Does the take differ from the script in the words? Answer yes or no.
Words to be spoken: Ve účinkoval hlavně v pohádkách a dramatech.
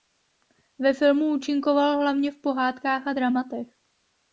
yes